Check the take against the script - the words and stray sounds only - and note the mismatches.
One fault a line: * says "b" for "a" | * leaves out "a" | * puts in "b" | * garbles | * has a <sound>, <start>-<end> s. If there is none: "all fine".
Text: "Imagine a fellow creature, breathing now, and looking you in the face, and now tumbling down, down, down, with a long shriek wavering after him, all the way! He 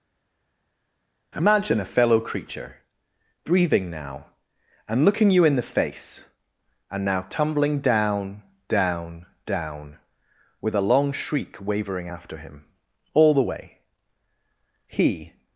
all fine